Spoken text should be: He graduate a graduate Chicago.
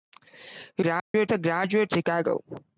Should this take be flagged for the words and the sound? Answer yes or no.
yes